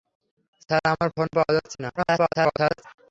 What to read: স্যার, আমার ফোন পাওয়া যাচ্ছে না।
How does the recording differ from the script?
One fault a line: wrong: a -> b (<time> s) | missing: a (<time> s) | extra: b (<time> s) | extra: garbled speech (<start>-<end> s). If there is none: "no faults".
extra: garbled speech (2.0-2.8 s)